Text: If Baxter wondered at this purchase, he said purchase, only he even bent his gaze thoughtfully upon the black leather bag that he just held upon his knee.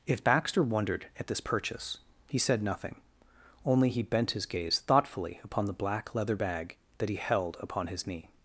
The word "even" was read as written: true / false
false